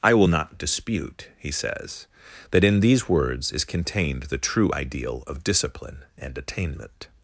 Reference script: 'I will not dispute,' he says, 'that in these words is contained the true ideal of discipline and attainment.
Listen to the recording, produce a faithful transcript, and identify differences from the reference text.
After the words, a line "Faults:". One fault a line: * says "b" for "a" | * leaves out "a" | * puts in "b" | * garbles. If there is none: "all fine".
'I will not dispute,' he says, 'that in these words is contained the true ideal of discipline and attainment.
Faults:
all fine